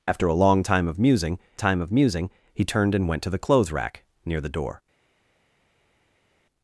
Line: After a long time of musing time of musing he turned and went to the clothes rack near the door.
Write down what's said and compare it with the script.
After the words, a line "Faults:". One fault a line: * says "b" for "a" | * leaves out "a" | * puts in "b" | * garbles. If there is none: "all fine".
After a long time of musing time of musing he turned and went to the clothes rack near the door.
Faults:
all fine